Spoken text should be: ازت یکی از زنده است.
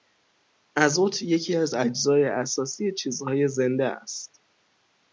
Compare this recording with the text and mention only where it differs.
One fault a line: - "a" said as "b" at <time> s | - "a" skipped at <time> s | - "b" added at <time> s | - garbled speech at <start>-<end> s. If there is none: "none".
- "اجزای اساسی چیزهای" added at 1.7 s